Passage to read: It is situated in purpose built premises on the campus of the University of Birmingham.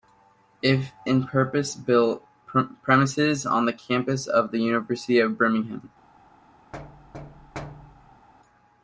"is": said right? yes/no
no